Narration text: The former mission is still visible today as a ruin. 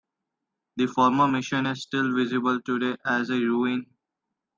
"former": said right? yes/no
yes